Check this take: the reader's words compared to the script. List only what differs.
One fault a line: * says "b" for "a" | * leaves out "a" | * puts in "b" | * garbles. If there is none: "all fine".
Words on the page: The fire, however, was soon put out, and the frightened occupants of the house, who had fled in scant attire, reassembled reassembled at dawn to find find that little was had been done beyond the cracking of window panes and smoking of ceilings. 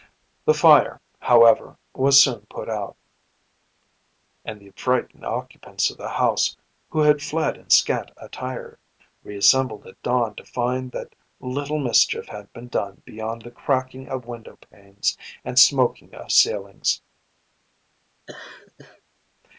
* leaves out "reassembled"
* leaves out "find"
* says "mischief" for "was"